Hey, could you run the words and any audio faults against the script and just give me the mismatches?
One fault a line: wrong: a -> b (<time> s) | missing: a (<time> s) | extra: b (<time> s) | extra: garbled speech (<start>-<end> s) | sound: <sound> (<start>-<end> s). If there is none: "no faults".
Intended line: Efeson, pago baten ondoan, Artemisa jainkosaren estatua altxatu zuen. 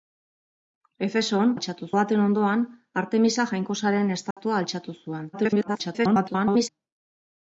wrong: pago -> altxatu (1.5 s)
sound: dropout (4.3-4.4 s)
extra: garbled speech (5.3-6.7 s)